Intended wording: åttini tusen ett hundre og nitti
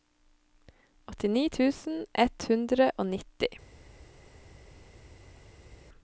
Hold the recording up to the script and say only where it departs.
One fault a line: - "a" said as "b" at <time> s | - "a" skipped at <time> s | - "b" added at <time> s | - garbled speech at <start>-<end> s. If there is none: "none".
none